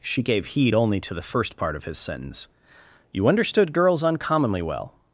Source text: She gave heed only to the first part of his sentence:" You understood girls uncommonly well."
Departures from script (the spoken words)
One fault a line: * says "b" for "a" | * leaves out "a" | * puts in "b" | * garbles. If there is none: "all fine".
all fine